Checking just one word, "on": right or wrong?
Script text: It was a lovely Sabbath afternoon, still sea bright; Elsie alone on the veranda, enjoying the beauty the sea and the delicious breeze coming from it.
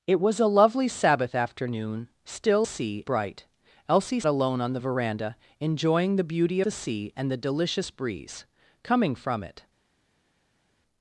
right